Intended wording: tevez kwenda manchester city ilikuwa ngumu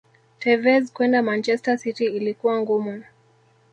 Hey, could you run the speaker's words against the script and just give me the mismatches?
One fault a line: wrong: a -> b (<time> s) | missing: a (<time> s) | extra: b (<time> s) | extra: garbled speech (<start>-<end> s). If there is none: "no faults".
no faults